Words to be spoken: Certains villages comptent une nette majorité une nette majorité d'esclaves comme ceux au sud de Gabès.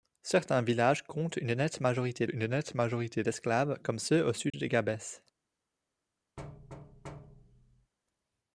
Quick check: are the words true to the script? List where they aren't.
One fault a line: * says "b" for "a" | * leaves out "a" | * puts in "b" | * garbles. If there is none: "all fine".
all fine